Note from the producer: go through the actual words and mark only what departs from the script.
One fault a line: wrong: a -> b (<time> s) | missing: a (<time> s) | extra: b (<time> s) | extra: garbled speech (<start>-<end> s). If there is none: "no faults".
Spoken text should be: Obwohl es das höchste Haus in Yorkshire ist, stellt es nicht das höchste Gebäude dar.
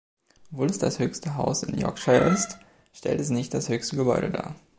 no faults